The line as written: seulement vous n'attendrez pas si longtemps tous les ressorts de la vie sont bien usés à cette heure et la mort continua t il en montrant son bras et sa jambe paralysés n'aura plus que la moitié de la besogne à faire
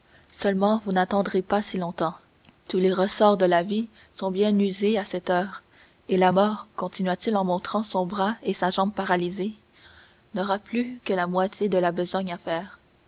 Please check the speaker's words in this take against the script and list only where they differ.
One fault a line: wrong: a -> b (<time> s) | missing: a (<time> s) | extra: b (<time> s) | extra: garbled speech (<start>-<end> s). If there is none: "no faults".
no faults